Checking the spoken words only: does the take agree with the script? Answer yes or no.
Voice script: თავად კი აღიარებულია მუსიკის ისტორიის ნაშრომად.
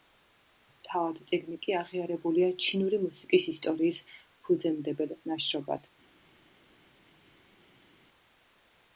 no